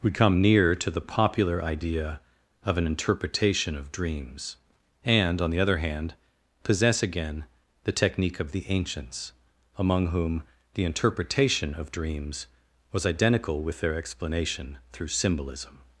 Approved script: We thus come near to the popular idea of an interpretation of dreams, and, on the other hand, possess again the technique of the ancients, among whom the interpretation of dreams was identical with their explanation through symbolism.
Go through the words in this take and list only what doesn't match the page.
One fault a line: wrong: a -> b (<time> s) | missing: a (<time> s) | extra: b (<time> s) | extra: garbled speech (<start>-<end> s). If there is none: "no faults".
missing: thus (0.1 s)